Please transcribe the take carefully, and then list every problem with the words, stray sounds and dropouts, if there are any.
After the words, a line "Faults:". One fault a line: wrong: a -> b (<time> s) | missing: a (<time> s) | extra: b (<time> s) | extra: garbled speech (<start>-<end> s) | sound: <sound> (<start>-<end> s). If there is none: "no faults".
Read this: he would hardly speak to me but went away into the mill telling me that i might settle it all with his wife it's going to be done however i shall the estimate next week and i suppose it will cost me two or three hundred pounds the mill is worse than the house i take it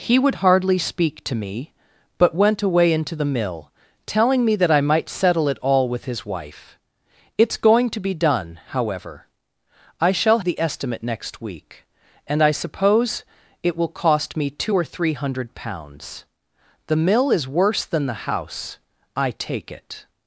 he would hardly speak to me but went away into the mill telling me that i might settle it all with his wife it's going to be done however i shall the estimate next week and i suppose it will cost me two or three hundred pounds the mill is worse than the house i take it
Faults:
no faults